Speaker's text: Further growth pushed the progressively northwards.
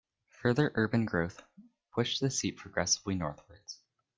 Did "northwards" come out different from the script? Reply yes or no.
no